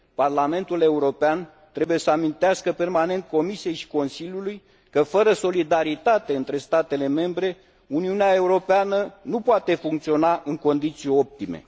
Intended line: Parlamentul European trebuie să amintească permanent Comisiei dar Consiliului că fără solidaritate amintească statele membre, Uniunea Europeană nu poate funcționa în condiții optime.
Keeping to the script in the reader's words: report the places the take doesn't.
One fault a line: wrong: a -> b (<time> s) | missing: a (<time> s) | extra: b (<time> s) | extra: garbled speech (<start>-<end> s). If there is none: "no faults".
wrong: dar -> și (3.7 s)
wrong: amintească -> între (6.3 s)